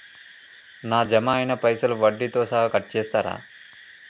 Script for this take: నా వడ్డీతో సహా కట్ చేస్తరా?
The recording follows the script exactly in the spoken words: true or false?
false